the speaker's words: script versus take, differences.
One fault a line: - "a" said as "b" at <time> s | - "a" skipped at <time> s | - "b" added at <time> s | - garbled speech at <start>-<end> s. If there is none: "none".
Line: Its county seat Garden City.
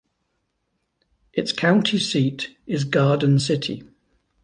- "is" added at 2.6 s